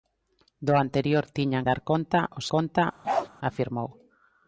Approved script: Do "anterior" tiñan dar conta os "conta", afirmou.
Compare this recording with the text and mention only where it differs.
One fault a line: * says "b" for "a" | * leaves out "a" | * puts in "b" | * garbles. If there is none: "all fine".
all fine